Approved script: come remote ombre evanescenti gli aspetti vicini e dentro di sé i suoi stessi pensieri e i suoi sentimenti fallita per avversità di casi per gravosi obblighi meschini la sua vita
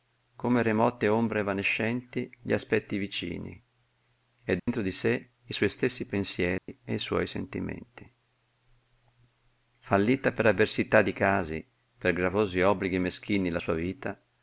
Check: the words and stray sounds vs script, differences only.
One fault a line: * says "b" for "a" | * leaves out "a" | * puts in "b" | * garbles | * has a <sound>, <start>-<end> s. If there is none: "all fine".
* has a dropout, 4.6-4.7 s
* has a dropout, 6.6-6.7 s